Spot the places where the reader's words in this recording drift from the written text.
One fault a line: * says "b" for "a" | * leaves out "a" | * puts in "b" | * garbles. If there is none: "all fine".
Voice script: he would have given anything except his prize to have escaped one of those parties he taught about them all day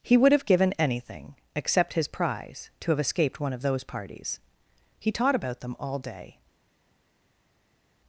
all fine